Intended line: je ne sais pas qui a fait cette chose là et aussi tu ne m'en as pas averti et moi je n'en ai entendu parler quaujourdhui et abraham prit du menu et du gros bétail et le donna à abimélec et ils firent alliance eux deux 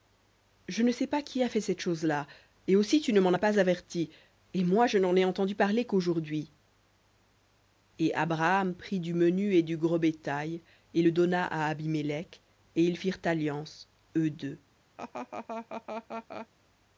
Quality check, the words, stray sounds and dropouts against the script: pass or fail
fail